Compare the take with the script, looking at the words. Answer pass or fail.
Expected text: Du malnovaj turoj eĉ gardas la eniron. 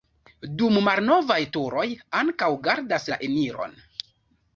fail